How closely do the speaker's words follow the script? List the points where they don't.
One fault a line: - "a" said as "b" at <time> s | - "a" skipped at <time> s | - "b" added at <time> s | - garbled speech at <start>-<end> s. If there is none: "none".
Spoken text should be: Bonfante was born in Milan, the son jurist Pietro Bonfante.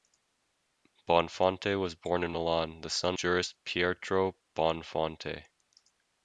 none